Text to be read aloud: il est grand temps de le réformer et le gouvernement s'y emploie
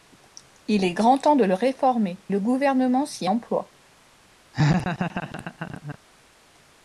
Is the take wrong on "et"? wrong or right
wrong